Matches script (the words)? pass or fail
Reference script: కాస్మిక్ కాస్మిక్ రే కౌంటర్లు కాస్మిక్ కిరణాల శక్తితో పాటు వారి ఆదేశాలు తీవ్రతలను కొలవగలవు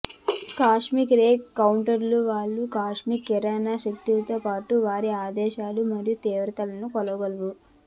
fail